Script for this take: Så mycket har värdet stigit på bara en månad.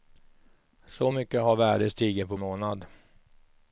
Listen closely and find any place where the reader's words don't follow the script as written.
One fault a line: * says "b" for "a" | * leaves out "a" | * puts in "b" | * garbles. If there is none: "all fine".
* leaves out "bara en"